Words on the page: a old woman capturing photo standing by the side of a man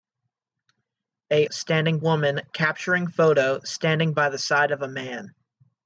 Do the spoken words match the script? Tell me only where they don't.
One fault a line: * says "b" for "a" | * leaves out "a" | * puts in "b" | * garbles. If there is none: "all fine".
* says "standing" for "old"